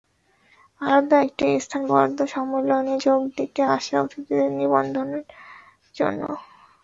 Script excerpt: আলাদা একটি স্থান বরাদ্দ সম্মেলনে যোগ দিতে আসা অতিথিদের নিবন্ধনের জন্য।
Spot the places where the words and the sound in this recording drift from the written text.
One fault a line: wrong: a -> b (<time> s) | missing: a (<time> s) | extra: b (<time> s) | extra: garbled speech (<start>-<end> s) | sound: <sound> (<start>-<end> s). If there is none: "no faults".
no faults